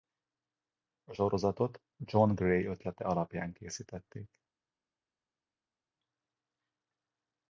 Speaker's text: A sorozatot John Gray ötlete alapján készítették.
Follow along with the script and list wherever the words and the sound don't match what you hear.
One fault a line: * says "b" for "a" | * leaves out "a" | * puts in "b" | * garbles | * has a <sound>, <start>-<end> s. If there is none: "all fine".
all fine